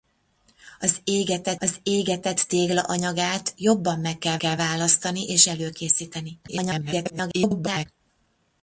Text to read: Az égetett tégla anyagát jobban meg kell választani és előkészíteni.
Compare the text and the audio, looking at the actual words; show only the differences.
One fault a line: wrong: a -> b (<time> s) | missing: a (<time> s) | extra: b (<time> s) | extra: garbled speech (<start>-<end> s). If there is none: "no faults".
extra: az égetett (1.6 s)
extra: kell (4.3 s)
extra: garbled speech (6.5-7.9 s)